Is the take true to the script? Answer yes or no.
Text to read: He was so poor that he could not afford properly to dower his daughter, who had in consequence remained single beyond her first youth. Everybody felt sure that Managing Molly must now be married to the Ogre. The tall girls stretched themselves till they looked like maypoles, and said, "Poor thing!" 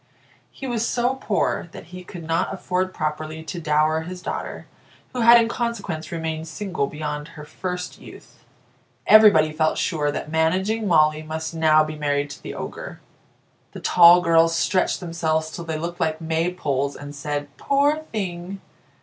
yes